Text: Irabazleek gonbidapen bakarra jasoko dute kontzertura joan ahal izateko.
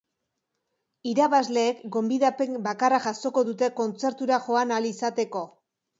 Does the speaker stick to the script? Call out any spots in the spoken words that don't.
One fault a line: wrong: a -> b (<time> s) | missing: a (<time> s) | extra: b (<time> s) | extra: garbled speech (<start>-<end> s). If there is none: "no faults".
no faults